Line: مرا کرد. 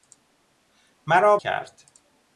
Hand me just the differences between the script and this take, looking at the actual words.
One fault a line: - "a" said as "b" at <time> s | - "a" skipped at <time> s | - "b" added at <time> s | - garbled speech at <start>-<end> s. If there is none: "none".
none